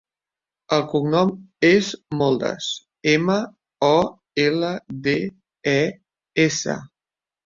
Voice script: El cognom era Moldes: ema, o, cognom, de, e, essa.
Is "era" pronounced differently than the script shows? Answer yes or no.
yes